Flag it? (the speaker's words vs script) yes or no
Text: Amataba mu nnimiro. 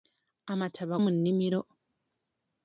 no